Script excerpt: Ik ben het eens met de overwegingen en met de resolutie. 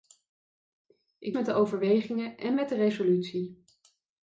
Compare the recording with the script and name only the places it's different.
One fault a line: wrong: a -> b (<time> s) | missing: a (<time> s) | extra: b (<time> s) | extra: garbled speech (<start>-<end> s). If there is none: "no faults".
missing: ben het eens (1.4 s)